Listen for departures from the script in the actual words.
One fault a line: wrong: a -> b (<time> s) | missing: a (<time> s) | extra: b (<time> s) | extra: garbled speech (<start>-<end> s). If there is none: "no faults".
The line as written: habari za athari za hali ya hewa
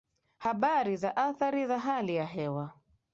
no faults